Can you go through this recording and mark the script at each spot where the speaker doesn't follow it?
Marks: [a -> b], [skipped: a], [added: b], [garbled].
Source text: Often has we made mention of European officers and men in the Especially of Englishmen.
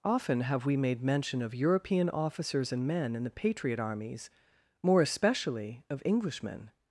Often [has -> have] we made mention of European officers and men in the [added: Patriot armies more] Especially of Englishmen.